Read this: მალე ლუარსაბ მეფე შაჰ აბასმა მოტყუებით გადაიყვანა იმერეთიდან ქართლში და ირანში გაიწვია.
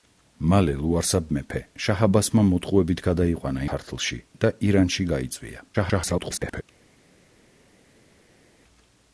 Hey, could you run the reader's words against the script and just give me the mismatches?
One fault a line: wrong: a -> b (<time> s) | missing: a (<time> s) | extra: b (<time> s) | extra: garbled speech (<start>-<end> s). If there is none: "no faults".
missing: იმერეთიდან (3.7 s)
extra: garbled speech (5.7-6.6 s)